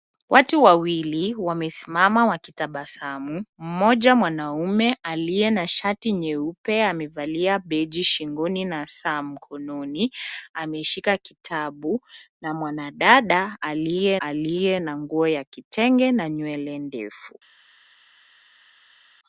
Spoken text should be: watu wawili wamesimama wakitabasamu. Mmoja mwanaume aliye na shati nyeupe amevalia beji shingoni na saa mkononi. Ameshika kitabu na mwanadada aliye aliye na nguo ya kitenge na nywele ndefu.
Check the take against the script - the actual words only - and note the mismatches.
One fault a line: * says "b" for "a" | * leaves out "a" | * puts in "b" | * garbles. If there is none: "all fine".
all fine